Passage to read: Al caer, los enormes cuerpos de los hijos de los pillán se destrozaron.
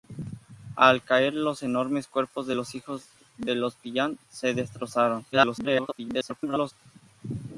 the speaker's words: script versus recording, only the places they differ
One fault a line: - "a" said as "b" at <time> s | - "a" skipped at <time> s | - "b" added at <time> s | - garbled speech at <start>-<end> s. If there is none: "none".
- garbled speech at 5.3-6.7 s